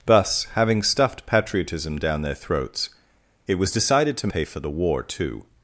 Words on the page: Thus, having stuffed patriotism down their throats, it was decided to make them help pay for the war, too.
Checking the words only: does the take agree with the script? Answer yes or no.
no